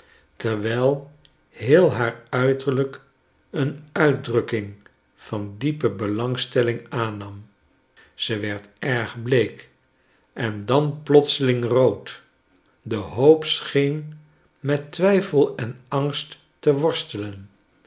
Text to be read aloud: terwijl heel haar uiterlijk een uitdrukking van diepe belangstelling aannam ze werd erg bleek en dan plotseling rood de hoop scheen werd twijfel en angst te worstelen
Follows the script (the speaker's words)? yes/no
no